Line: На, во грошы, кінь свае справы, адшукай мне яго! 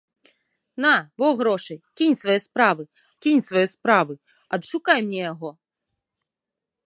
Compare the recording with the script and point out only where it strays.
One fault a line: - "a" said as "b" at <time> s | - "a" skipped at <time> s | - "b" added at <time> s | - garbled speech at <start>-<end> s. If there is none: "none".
- "кінь свае справы" added at 3.3 s